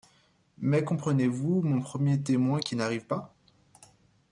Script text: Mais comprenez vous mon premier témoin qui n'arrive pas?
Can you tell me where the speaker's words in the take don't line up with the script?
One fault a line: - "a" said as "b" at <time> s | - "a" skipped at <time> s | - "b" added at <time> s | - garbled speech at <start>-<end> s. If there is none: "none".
none